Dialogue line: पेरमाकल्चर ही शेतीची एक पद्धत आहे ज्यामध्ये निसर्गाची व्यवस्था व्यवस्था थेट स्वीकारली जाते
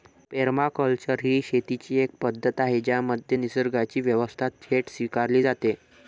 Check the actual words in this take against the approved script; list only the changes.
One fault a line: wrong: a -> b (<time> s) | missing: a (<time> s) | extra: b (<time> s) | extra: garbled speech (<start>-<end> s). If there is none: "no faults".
missing: व्यवस्था (4.5 s)